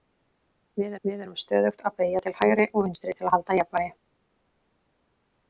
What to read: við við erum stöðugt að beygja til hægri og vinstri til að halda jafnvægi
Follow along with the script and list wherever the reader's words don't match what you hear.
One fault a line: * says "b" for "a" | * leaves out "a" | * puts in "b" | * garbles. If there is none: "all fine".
all fine